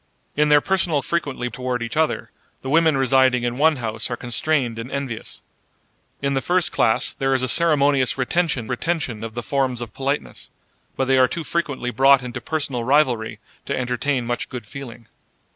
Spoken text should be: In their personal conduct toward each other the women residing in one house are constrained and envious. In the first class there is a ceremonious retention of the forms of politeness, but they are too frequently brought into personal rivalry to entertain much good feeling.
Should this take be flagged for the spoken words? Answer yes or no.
yes